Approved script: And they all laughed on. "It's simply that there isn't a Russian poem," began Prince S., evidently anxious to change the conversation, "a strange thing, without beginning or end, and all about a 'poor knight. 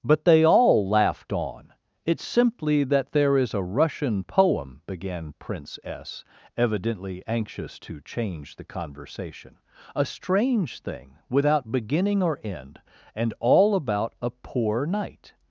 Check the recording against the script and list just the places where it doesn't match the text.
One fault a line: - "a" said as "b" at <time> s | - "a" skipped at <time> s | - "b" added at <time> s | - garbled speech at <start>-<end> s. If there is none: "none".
- "And" said as "But" at 0.0 s
- "isn't" said as "is" at 3.4 s